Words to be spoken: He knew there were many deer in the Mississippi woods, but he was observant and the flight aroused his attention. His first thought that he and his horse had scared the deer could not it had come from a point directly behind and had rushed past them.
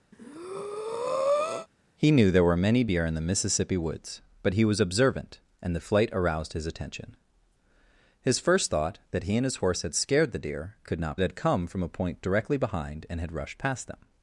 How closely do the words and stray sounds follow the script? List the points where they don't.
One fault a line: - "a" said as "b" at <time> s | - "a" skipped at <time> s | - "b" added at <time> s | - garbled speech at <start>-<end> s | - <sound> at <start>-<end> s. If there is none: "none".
- breath at 0.1-1.7 s